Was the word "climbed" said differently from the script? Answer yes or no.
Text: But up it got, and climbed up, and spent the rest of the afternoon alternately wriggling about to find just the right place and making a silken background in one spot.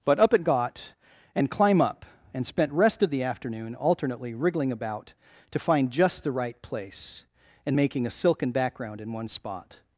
yes